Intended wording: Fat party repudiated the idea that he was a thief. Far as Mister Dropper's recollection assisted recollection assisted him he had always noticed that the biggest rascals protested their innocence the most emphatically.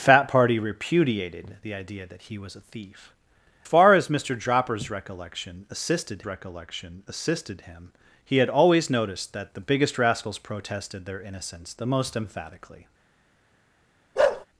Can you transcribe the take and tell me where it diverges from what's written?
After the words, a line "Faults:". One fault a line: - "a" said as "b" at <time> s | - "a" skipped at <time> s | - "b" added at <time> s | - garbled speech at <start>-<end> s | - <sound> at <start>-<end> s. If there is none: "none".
Fat party repudiated the idea that he was a thief. Far as Mister Dropper's recollection assisted recollection assisted him he had always noticed that the biggest rascals protested their innocence the most emphatically.
Faults:
- bark at 14.2-14.5 s